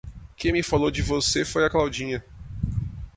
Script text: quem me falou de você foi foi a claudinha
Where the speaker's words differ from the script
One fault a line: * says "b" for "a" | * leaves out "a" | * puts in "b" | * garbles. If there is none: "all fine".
* leaves out "foi"